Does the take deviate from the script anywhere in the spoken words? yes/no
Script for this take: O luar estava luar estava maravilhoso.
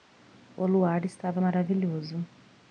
yes